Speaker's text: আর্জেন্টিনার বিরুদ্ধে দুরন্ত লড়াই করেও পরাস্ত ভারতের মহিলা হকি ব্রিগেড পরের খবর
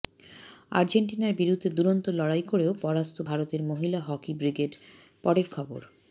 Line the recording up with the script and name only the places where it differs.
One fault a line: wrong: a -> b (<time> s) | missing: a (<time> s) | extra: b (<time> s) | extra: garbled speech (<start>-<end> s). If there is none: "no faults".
no faults